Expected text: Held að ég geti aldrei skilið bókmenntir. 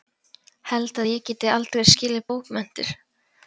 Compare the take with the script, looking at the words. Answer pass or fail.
pass